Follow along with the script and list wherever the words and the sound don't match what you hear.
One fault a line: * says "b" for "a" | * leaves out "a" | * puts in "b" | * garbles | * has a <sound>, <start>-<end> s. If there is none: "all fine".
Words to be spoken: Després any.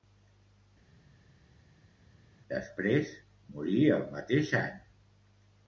* puts in "morí el mateix"